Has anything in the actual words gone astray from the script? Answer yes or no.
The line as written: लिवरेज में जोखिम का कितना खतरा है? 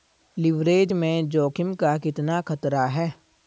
no